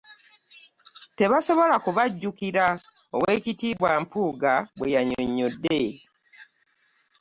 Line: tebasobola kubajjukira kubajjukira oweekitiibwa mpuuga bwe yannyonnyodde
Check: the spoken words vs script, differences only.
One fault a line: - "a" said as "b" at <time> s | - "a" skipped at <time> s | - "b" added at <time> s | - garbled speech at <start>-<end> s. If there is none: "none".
- "kubajjukira" skipped at 2.6 s